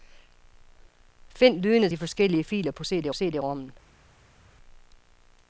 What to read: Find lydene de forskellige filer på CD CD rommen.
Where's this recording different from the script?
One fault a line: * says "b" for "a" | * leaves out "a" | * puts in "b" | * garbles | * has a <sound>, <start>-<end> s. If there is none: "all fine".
all fine